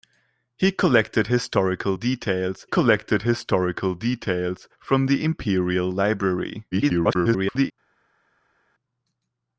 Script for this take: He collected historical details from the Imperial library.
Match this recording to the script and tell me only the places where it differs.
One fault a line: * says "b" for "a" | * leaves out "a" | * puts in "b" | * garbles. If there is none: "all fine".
* puts in "collected historical details"
* garbles